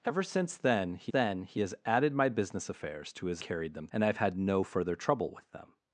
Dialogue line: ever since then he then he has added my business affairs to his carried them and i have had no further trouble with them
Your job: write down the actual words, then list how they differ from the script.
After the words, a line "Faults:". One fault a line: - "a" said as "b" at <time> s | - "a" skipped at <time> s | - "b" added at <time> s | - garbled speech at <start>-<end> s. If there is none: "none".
ever since then he then he has added my business affairs to his carried them and i have had no further trouble with them
Faults:
none